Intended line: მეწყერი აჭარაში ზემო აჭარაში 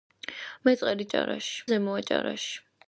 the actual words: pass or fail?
pass